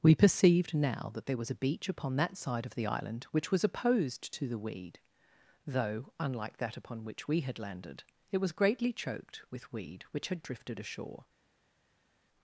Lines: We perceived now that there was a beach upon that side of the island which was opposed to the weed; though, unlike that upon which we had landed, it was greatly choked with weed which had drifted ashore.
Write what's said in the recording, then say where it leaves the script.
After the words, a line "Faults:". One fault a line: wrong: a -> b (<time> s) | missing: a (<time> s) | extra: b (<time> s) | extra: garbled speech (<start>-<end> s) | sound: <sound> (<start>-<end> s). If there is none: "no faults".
We perceived now that there was a beach upon that side of the island which was opposed to the weed; though, unlike that upon which we had landed, it was greatly choked with weed which had drifted ashore.
Faults:
no faults